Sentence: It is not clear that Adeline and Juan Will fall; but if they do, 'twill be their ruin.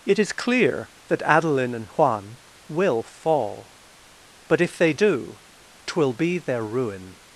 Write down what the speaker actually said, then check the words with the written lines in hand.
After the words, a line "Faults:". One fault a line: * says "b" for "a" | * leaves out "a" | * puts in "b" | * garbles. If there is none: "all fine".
It is clear that Adeline and Juan Will fall; but if they do, 'twill be their ruin.
Faults:
* leaves out "not"